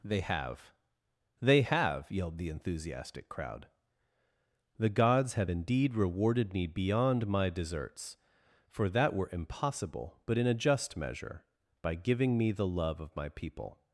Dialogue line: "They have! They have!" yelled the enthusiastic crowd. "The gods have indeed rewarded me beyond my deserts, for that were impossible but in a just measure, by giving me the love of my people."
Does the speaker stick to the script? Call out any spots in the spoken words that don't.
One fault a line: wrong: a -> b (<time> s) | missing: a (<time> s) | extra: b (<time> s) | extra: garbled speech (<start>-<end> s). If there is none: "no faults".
no faults